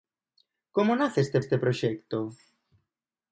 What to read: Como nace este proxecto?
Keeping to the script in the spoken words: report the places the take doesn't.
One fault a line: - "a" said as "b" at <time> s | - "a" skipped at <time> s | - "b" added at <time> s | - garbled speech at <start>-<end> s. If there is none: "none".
- "este" added at 1.4 s